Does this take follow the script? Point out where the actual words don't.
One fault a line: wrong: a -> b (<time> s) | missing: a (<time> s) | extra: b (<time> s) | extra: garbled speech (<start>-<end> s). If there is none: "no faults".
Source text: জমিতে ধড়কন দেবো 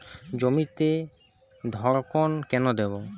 extra: কেন (2.5 s)